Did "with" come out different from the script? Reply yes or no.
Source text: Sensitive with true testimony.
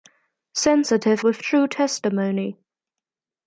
no